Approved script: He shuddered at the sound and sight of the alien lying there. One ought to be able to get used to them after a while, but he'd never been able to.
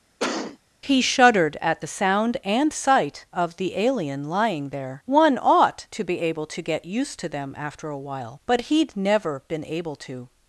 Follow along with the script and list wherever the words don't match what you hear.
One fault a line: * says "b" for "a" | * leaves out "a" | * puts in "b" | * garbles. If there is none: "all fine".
all fine